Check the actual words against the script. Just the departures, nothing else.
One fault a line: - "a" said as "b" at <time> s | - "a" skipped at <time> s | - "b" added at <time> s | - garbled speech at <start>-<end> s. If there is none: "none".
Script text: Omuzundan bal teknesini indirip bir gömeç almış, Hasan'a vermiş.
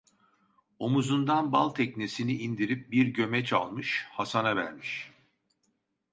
none